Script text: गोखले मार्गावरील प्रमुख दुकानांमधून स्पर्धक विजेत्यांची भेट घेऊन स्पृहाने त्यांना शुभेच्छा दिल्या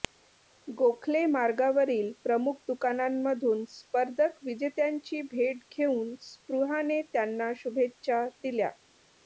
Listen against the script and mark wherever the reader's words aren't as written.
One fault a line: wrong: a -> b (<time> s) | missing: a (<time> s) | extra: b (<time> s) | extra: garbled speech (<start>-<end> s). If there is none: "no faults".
no faults